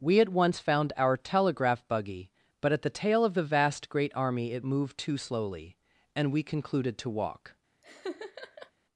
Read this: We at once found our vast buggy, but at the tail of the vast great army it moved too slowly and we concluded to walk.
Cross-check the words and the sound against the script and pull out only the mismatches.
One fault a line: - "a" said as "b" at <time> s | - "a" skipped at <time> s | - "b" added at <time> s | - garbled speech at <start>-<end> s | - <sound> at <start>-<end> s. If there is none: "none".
- "vast" said as "telegraph" at 1.1 s
- laugh at 7.8-8.7 s